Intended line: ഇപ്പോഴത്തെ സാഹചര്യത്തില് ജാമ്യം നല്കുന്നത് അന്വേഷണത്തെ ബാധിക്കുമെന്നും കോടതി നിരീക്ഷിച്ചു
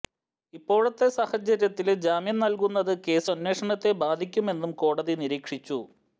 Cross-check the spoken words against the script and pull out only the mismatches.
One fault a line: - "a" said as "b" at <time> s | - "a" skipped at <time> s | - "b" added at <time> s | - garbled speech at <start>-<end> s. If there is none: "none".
- "കേസ്" added at 3.0 s